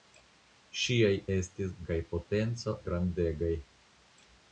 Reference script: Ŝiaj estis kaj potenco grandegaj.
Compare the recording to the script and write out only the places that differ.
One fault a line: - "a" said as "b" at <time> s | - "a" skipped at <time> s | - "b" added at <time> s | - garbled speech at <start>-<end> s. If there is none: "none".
none